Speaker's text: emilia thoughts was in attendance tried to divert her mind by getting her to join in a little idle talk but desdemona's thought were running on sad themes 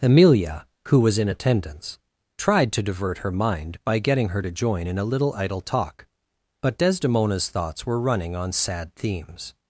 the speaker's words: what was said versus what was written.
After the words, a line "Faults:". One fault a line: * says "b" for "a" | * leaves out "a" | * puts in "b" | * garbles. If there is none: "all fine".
emilia who was in attendance tried to divert her mind by getting her to join in a little idle talk but desdemona's thoughts were running on sad themes
Faults:
* says "who" for "thoughts"
* says "thoughts" for "thought"